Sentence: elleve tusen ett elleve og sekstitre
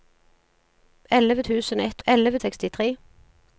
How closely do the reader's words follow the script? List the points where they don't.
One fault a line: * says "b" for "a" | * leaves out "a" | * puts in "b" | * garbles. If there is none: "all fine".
all fine